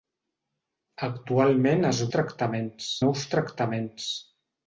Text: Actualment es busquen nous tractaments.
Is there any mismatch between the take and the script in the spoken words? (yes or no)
yes